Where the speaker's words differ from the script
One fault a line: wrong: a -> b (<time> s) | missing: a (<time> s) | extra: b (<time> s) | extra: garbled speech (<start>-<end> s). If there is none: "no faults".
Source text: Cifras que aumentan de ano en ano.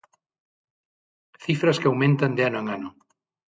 no faults